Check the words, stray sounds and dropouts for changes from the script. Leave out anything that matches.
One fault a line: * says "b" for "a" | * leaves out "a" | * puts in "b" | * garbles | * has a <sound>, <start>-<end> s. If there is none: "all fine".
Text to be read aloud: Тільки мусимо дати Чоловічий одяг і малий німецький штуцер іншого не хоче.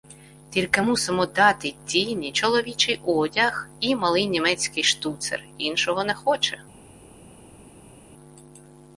* puts in "Тіні"